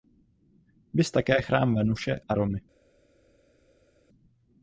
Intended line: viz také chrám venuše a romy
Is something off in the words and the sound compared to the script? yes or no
no